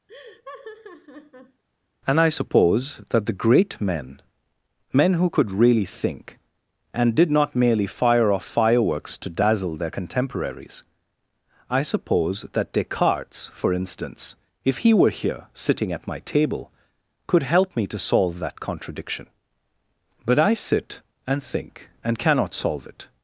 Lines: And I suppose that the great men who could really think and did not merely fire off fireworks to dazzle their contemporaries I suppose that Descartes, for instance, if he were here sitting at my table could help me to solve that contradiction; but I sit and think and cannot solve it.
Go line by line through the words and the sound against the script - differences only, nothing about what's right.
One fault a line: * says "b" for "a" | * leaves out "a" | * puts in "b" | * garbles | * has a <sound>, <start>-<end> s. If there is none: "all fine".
* has a laugh, 0.1-1.6 s
* puts in "men"